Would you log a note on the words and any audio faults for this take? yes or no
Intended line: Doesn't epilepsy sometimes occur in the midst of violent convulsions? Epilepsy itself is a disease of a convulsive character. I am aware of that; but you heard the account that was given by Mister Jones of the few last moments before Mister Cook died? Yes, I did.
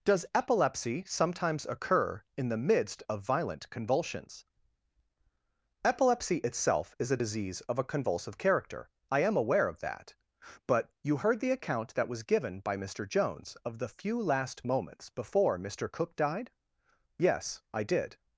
yes